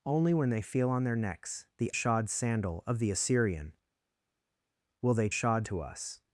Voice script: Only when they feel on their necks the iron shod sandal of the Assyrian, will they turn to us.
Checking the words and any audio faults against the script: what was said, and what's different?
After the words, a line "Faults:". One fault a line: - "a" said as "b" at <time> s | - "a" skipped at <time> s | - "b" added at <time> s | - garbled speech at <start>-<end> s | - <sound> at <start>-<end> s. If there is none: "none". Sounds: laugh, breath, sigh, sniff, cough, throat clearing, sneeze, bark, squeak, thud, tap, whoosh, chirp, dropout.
Only when they feel on their necks the shod sandal of the Assyrian, will they shod to us.
Faults:
- "iron" skipped at 1.9 s
- "turn" said as "shod" at 5.3 s